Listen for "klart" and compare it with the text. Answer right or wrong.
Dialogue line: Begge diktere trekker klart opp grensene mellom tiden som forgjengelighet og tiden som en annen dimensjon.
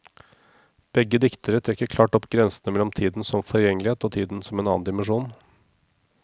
right